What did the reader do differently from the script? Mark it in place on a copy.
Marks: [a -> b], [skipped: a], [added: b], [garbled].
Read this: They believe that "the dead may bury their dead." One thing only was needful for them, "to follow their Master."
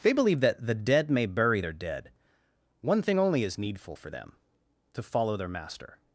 They believe that "the dead may bury their dead." One thing only [was -> is] needful for them, "to follow their Master."